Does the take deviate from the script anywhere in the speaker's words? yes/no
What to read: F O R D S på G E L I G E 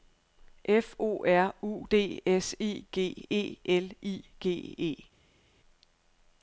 yes